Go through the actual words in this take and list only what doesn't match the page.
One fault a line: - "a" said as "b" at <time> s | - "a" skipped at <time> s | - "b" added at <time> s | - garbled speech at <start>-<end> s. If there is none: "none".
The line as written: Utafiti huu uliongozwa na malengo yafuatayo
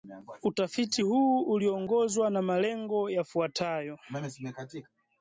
none